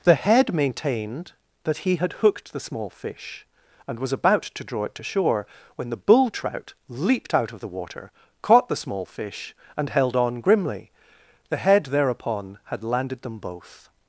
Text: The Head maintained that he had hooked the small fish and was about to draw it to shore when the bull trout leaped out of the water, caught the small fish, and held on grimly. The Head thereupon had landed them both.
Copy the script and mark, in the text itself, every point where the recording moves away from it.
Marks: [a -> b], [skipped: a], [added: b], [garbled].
The Head maintained that he had hooked the small fish and was about to draw it to shore when the bull trout leaped out of the water, caught the small fish, and held on grimly. The Head thereupon had landed them both.